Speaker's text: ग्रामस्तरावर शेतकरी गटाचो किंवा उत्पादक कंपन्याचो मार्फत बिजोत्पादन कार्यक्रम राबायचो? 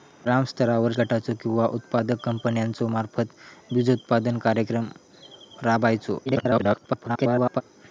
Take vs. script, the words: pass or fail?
fail